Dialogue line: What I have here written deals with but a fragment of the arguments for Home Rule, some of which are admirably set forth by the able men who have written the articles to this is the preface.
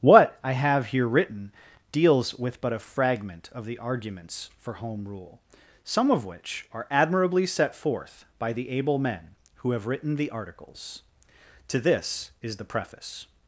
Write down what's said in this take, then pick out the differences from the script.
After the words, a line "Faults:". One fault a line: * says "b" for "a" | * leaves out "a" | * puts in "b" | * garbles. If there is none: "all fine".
What I have here written deals with but a fragment of the arguments for Home Rule, some of which are admirably set forth by the able men who have written the articles to this is the preface.
Faults:
all fine